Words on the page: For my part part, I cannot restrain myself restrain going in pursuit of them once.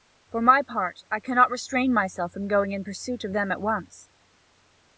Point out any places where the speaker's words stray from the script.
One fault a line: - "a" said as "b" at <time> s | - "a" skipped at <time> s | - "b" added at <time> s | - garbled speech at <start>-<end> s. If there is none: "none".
- "part" skipped at 1.0 s
- "restrain" said as "from" at 2.3 s
- "at" added at 3.5 s